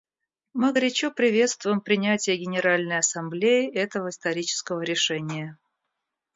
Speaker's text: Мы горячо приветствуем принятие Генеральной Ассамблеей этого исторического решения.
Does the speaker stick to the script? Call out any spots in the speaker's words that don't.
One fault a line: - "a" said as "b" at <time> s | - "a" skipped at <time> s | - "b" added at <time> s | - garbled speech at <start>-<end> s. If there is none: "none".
none